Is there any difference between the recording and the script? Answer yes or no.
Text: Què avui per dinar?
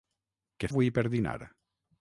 no